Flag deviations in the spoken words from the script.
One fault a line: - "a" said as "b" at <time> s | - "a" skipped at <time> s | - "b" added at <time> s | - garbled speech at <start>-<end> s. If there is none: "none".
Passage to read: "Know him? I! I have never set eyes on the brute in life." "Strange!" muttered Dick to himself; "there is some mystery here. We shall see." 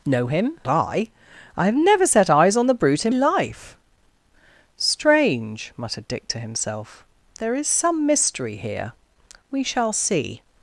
none